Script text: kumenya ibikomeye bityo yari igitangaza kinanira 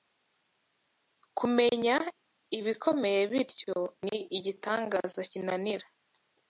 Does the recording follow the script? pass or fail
fail